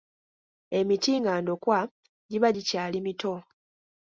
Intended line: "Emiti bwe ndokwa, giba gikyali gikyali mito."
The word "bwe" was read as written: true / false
false